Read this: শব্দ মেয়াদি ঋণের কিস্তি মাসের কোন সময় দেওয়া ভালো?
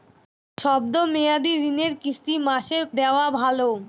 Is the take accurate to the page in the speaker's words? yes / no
no